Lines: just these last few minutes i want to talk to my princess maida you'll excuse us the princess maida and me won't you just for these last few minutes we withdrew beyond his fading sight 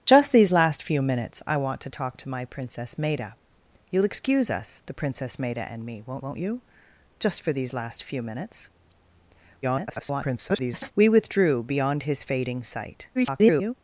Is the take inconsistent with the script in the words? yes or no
yes